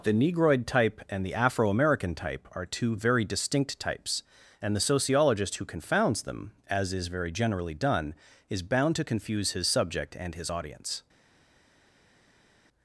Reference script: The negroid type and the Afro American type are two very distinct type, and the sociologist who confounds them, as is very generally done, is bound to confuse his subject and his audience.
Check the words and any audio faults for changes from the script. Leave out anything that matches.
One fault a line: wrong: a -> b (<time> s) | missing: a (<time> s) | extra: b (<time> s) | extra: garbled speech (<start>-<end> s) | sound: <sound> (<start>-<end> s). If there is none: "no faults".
wrong: type -> types (3.8 s)